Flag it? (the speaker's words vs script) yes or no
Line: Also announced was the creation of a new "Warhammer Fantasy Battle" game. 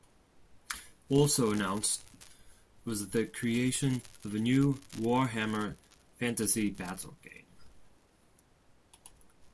no